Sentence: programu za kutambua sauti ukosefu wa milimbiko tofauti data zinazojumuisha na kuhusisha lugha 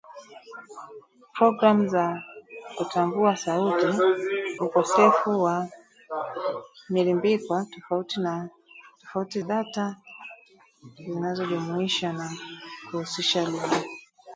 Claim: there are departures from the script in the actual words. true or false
false